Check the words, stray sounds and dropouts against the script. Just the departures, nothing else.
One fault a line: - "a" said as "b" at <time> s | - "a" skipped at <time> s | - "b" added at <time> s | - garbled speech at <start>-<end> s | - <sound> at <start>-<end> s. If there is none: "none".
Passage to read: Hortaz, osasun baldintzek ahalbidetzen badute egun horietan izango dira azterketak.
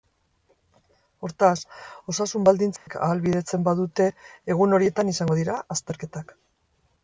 - dropout at 2.8-2.9 s